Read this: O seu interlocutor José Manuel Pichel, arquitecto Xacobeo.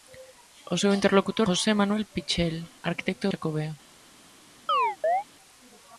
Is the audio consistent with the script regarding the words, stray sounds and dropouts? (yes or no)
no